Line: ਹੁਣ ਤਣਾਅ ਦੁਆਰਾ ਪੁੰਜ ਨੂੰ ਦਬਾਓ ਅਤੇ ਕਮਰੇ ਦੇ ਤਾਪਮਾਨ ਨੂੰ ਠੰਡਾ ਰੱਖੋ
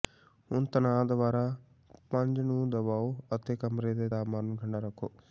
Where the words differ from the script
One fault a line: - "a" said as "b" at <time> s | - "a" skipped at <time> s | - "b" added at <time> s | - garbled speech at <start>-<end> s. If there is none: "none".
none